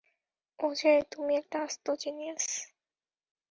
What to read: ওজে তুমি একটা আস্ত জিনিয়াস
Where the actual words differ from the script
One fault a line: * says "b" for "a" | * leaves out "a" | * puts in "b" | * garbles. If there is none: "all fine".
all fine